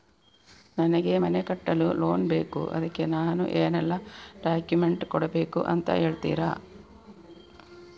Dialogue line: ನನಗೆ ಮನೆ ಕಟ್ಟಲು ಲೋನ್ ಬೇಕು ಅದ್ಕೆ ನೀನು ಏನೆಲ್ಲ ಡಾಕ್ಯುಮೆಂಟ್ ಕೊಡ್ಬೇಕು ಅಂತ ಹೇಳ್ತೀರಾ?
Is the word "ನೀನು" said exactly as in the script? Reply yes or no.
no